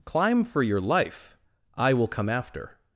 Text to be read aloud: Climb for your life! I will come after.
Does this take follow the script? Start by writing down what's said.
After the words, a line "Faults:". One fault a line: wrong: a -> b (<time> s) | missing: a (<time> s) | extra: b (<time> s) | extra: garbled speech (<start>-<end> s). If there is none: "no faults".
Climb for your life! I will come after.
Faults:
no faults